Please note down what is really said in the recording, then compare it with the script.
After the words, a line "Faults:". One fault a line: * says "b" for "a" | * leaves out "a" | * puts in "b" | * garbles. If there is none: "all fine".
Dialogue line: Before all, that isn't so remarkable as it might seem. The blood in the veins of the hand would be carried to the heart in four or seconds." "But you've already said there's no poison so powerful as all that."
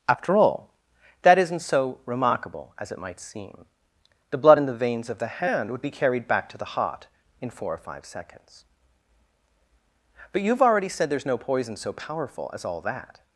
After all, that isn't so remarkable as it might seem. The blood in the veins of the hand would be carried back to the heart in four or five seconds." "But you've already said there's no poison so powerful as all that."
Faults:
* says "After" for "Before"
* puts in "back"
* puts in "five"